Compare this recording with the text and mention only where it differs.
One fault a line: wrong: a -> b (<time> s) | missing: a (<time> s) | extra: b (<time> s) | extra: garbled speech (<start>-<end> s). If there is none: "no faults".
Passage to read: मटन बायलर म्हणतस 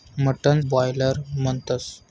no faults